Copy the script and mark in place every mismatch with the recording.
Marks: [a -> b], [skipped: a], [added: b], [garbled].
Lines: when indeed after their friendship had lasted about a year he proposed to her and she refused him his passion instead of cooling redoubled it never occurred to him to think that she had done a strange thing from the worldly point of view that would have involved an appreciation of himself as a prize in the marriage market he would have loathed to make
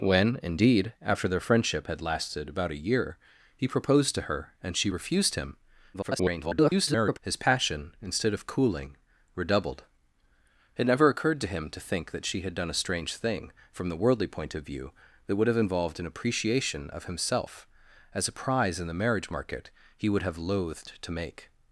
when indeed after their friendship had lasted about a year he proposed to her and she refused him [garbled] his passion instead of cooling redoubled it never occurred to him to think that she had done a strange thing from the worldly point of view that would have involved an appreciation of himself as a prize in the marriage market he would have loathed to make